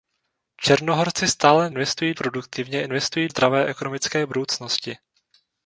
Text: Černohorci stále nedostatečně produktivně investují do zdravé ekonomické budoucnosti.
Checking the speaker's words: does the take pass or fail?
fail